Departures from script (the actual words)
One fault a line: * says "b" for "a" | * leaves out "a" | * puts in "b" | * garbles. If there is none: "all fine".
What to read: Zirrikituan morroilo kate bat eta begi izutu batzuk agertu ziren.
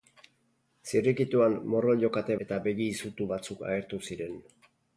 * leaves out "bat"